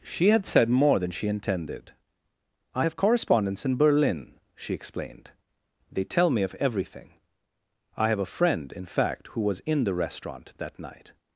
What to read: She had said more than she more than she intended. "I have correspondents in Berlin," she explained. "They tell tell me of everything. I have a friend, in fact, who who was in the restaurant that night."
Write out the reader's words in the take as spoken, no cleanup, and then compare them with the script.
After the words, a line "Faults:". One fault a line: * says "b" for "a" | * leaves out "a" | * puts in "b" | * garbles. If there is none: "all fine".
She had said more than she intended. "I have correspondents in Berlin," she explained. "They tell me of everything. I have a friend, in fact, who was in the restaurant that night."
Faults:
* leaves out "more than she"
* leaves out "tell"
* leaves out "who"